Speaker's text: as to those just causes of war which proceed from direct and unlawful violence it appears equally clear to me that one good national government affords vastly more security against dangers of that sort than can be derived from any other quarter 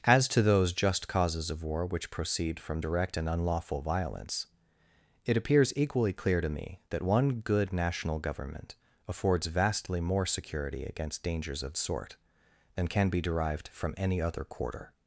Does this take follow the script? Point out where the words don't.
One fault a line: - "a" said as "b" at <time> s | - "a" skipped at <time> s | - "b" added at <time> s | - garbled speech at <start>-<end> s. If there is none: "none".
- "that" skipped at 11.7 s